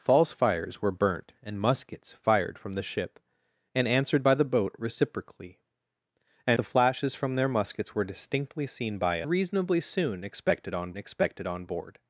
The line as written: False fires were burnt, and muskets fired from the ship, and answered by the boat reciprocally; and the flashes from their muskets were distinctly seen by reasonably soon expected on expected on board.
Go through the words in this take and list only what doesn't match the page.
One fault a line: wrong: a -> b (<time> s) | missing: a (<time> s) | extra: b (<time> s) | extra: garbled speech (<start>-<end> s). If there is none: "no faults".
no faults